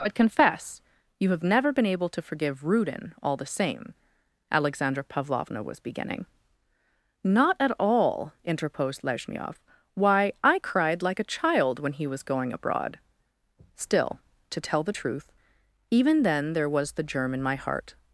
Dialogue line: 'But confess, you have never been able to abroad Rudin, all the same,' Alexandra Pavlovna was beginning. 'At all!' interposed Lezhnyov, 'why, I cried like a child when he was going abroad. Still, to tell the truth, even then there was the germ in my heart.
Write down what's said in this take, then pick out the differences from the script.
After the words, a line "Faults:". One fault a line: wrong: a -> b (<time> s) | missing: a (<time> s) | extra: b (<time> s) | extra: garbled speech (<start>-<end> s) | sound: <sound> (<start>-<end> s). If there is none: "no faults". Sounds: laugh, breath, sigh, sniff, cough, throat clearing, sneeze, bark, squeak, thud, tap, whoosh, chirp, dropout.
'But confess, you have never been able to forgive Rudin, all the same,' Alexandra Pavlovna was beginning. 'Not at all!' interposed Lezhnyov, 'why, I cried like a child when he was going abroad. Still, to tell the truth, even then there was the germ in my heart.
Faults:
wrong: abroad -> forgive (2.2 s)
extra: Not (7.2 s)